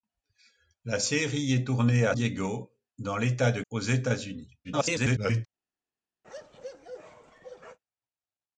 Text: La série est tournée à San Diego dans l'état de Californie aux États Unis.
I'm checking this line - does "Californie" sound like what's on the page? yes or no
no